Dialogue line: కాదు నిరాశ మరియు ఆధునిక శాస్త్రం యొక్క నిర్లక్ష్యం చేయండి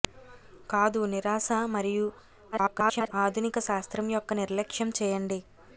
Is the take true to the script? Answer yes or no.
no